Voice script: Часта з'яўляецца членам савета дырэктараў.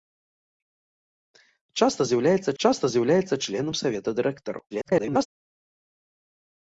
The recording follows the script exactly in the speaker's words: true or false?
false